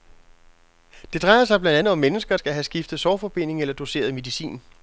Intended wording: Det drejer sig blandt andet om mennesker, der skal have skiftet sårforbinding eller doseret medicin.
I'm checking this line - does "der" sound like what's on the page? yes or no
no